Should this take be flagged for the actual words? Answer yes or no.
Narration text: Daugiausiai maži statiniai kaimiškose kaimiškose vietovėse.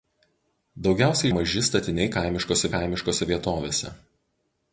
no